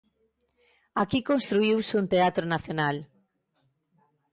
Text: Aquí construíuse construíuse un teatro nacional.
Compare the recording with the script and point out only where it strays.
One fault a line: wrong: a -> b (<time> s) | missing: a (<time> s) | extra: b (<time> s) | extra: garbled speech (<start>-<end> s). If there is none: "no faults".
missing: construíuse (1.9 s)